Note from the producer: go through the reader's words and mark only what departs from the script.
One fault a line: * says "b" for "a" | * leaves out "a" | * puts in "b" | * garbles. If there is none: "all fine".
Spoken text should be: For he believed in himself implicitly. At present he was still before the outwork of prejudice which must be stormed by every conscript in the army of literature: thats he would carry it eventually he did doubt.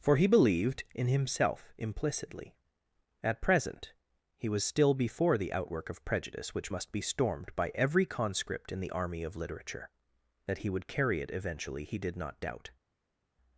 * says "that" for "thats"
* puts in "not"